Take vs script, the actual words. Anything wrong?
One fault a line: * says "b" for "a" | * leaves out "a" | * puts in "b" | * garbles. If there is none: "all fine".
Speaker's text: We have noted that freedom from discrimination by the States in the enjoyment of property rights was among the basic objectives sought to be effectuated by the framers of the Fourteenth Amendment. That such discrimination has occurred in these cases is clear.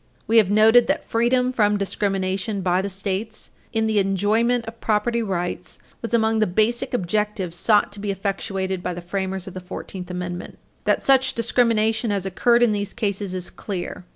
all fine